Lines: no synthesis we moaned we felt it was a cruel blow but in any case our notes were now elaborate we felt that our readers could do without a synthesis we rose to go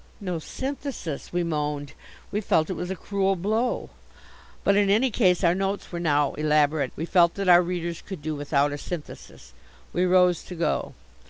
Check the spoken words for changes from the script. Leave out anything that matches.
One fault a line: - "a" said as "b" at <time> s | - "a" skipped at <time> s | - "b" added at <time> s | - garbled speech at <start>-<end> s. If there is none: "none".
none